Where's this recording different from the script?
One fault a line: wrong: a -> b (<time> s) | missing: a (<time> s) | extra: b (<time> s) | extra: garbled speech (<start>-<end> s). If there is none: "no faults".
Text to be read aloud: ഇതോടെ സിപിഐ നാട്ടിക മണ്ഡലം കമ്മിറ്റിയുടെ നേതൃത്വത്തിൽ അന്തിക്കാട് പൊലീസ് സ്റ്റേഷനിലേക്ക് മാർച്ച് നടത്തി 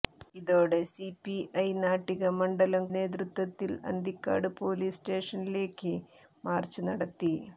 missing: കമ്മിറ്റിയുടെ (2.9 s)